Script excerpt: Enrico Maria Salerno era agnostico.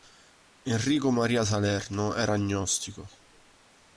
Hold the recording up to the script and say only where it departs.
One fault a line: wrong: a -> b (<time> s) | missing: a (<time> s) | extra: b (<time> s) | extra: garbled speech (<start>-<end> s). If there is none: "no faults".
no faults